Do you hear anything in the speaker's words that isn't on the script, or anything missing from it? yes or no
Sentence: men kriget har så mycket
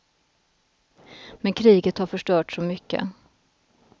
yes